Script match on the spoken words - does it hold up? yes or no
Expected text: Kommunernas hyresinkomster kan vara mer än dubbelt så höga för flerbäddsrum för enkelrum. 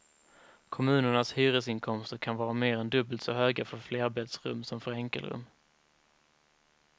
no